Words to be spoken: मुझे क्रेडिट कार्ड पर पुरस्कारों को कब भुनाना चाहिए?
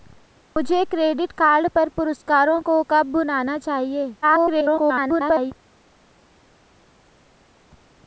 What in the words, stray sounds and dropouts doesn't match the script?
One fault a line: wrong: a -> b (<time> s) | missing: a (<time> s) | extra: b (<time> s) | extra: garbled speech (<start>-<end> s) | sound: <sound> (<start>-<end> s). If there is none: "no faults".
extra: garbled speech (4.2-5.5 s)